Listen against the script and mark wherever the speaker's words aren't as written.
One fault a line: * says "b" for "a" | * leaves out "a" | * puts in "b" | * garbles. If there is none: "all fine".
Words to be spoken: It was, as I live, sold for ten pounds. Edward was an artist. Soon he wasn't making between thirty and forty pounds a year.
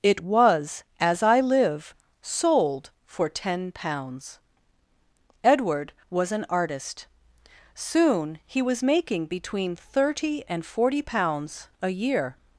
* says "was" for "wasn't"